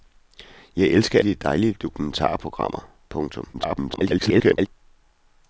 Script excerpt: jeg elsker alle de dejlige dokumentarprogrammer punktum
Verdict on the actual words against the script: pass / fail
fail